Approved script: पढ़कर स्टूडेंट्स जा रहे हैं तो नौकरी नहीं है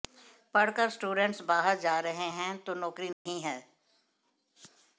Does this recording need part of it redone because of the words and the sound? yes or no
yes